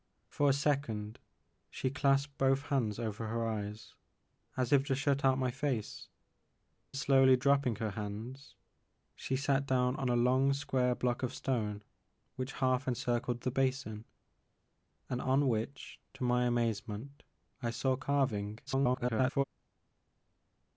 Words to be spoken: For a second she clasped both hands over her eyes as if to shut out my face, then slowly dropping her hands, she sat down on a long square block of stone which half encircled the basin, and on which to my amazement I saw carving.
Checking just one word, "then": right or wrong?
wrong